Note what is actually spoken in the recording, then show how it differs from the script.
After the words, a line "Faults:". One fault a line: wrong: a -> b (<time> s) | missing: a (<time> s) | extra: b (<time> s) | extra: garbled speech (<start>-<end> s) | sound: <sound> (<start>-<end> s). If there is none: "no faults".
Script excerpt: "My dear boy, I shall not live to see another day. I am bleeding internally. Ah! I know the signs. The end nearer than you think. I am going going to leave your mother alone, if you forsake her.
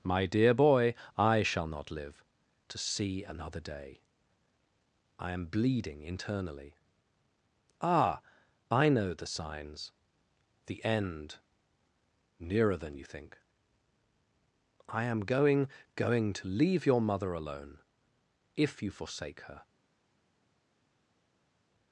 "My dear boy, I shall not live to see another day. I am bleeding internally. Ah! I know the signs. The end nearer than you think. I am going going to leave your mother alone, if you forsake her.
Faults:
no faults